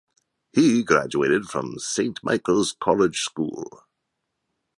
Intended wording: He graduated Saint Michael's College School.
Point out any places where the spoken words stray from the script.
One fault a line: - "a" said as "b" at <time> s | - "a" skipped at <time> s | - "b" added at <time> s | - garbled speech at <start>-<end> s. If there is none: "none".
- "from" added at 1.4 s